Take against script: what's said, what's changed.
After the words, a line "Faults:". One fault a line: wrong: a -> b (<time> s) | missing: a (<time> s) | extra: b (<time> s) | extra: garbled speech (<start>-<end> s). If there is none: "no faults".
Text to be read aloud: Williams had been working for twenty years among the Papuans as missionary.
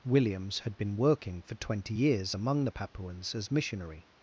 Williams had been working for twenty years among the Papuans as missionary.
Faults:
no faults